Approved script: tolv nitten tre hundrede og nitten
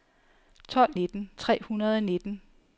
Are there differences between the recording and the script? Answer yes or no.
no